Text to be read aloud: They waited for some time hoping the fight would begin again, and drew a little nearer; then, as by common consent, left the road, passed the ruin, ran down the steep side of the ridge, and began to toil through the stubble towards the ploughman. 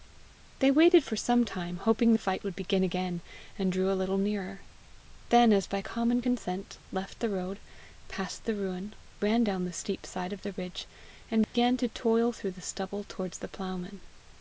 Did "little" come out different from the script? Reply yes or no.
no